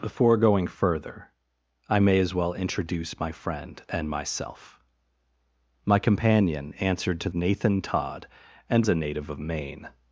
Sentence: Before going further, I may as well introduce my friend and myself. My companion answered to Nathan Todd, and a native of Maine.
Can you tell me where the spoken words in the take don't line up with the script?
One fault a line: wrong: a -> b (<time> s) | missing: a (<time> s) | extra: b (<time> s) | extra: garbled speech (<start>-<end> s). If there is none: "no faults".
no faults